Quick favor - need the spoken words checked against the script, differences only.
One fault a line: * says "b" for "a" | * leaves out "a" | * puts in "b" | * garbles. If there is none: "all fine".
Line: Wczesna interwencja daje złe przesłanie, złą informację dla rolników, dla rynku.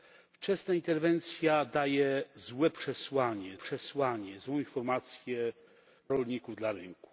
* puts in "przesłanie"
* leaves out "dla"